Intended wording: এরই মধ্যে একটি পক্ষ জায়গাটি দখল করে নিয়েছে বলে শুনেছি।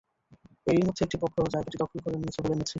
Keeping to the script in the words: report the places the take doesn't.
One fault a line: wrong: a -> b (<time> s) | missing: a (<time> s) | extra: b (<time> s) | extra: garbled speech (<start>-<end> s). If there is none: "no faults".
no faults